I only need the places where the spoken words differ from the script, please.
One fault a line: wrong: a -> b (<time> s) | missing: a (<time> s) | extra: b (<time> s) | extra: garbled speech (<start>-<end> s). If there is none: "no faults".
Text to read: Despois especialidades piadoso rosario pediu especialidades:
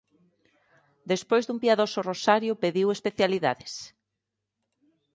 wrong: especialidades -> dun (1.4 s)